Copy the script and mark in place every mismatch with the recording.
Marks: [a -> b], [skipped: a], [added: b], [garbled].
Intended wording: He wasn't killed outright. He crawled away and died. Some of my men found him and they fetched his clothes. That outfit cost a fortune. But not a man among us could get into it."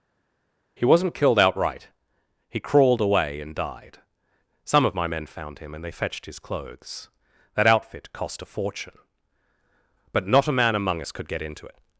He wasn't killed outright. He crawled away and died. Some of my men found him and they fetched his clothes. That outfit cost a fortune. But not a man among us could get into it."